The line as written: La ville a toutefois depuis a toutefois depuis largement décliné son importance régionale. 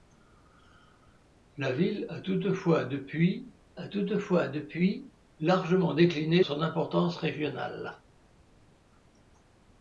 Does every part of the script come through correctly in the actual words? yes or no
yes